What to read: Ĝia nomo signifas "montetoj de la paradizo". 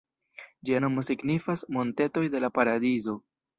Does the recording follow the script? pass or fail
pass